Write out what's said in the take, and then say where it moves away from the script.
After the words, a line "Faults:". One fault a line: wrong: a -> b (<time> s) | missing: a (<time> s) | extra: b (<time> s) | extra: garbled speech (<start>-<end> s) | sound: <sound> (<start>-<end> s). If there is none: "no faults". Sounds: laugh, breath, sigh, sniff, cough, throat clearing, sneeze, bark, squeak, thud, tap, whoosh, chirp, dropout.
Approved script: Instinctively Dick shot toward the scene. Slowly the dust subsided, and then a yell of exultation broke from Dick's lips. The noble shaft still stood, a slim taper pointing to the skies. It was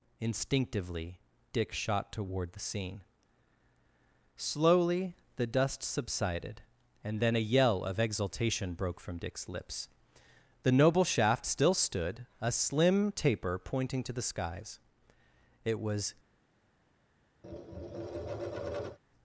Instinctively Dick shot toward the scene. Slowly the dust subsided, and then a yell of exultation broke from Dick's lips. The noble shaft still stood, a slim taper pointing to the skies. It was
Faults:
sound: tap (17.4-19.0 s)